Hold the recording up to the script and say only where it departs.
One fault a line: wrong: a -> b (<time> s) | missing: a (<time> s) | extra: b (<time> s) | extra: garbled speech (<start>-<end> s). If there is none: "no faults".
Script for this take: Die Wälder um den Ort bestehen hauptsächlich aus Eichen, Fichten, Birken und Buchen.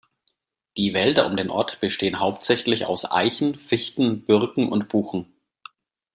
no faults